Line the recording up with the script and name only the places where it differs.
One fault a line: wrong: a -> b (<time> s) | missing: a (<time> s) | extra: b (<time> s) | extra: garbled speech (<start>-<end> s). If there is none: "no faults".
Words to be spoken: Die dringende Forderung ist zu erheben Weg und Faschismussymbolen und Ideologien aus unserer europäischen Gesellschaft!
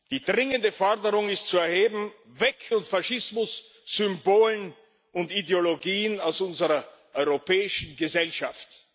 no faults